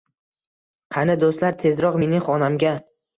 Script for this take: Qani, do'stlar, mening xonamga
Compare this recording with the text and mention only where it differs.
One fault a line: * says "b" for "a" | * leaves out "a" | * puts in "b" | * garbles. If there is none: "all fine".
* puts in "tezroq"